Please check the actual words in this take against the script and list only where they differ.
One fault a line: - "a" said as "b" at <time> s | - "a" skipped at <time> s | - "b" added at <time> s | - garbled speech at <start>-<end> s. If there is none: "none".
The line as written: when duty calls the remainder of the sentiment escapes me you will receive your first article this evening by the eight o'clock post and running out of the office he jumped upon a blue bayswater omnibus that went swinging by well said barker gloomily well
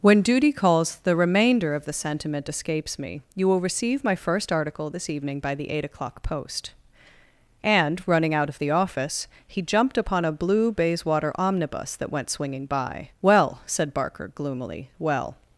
- "your" said as "my" at 4.0 s